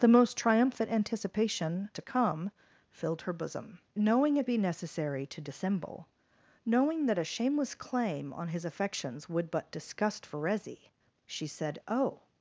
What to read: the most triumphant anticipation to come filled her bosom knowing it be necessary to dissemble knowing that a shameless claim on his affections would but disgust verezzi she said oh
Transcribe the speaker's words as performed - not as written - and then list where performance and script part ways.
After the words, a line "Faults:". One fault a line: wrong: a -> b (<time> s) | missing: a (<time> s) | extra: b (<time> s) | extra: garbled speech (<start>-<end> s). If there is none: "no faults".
the most triumphant anticipation to come filled her bosom knowing it be necessary to dissemble knowing that a shameless claim on his affections would but disgust verezzi she said oh
Faults:
no faults